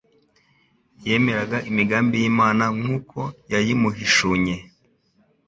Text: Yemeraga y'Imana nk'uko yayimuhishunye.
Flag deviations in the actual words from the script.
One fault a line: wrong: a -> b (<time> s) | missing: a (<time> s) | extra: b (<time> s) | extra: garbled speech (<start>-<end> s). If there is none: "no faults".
extra: imigambi (1.7 s)